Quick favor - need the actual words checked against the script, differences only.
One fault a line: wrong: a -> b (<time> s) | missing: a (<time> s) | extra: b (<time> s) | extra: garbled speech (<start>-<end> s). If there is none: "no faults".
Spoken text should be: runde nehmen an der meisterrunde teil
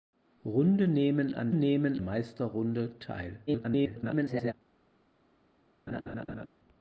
wrong: der -> nehmen (1.5 s)
extra: garbled speech (3.5-4.5 s)